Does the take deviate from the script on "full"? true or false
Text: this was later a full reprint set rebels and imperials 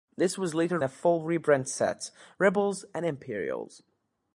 false